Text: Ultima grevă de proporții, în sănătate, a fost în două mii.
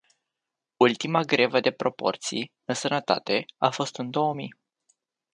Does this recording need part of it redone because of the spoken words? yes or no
no